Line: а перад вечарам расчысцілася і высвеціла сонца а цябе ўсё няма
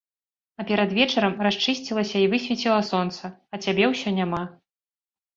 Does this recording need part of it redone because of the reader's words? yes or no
no